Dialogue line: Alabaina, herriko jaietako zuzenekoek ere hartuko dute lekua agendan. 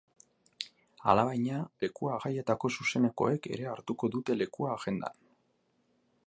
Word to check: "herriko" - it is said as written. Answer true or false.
false